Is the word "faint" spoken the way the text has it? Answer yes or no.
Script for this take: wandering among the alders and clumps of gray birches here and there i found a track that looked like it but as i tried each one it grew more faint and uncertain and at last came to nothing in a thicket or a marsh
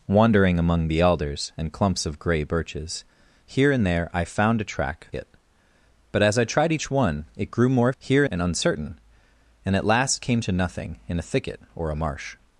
no